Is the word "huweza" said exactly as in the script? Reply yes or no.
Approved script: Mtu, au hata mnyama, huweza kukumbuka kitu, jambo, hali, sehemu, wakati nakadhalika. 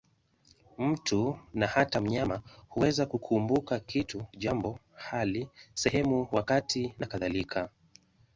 yes